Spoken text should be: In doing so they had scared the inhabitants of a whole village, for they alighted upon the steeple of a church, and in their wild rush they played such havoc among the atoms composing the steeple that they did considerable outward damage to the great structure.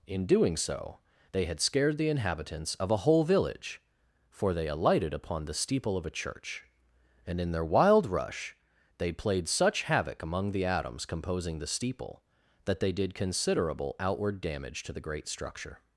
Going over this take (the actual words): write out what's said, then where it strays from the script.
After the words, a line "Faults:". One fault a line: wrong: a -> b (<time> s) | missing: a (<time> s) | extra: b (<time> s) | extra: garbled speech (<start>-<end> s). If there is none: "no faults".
In doing so they had scared the inhabitants of a whole village, for they alighted upon the steeple of a church, and in their wild rush they played such havoc among the atoms composing the steeple that they did considerable outward damage to the great structure.
Faults:
no faults